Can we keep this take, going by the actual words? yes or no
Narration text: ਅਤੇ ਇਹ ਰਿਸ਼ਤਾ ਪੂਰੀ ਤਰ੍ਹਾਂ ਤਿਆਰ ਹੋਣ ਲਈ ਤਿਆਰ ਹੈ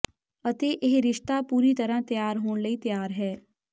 yes